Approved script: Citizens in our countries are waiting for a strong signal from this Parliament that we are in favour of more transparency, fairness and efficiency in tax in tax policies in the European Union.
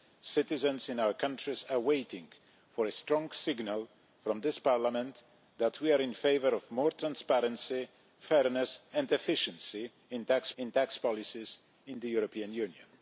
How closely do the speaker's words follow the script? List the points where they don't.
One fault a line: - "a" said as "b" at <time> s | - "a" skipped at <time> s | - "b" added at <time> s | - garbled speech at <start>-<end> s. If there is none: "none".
none